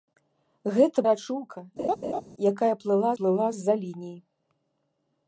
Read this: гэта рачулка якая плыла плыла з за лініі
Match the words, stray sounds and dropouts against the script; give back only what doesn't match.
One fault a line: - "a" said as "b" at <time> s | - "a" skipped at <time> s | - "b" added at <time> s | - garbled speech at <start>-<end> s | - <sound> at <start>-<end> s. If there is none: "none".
- laugh at 1.8-2.2 s